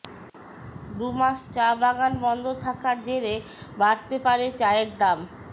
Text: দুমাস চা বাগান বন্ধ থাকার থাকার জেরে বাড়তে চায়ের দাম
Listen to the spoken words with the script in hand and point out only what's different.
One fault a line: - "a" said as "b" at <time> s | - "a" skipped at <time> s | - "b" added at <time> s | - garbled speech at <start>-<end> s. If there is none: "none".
- "থাকার" skipped at 3.0 s
- "পারে" added at 4.3 s